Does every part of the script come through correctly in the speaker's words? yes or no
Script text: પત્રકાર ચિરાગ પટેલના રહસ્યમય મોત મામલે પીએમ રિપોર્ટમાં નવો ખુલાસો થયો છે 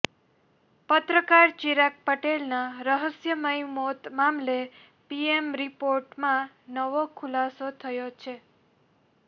yes